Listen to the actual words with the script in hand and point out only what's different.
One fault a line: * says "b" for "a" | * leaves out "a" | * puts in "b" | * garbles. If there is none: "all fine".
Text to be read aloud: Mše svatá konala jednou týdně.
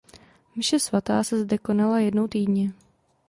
* puts in "se zde"